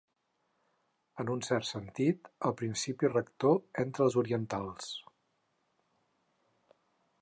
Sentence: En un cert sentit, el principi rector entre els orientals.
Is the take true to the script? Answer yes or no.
yes